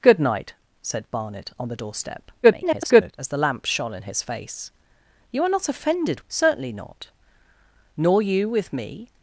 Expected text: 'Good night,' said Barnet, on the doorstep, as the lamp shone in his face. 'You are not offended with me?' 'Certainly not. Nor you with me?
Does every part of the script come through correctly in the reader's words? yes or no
no